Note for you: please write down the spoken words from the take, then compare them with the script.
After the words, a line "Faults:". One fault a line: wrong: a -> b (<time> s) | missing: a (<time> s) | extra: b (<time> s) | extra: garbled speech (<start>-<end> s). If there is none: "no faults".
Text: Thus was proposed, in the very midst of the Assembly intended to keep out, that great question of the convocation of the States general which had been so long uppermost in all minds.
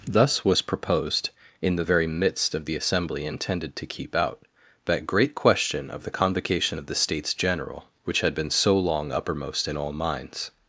Thus was proposed, in the very midst of the Assembly intended to keep out, that great question of the convocation of the States general which had been so long uppermost in all minds.
Faults:
no faults